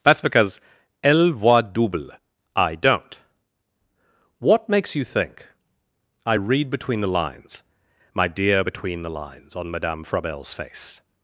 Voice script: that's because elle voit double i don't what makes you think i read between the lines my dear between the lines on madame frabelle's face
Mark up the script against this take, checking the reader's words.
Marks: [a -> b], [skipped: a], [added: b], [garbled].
that's because elle voit double i don't what makes you think i read between the lines my dear between the lines on madame frabelle's face